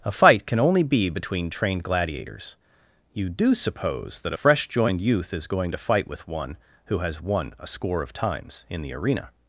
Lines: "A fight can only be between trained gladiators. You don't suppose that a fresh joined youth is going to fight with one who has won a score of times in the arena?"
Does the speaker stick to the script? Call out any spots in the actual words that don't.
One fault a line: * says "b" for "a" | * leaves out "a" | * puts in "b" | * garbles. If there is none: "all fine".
* says "do" for "don't"